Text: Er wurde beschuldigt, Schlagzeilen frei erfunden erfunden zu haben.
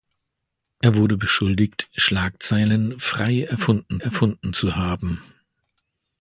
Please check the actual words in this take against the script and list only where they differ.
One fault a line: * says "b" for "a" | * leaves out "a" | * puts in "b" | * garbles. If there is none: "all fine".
all fine